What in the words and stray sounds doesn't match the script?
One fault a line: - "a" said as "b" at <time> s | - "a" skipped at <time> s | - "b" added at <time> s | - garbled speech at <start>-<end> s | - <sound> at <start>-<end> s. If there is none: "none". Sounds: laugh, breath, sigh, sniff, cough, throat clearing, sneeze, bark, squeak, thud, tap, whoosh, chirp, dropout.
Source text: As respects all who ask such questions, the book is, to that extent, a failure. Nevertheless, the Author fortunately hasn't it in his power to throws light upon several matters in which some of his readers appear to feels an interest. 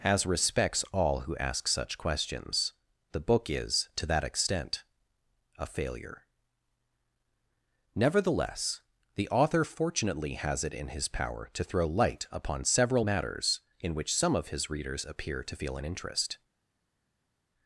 - "hasn't" said as "has" at 10.3 s
- "throws" said as "throw" at 11.6 s
- "feels" said as "feel" at 15.5 s